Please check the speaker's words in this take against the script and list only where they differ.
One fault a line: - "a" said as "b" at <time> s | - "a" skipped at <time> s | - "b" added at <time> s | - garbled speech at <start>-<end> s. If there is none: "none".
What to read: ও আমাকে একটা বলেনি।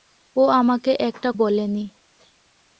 none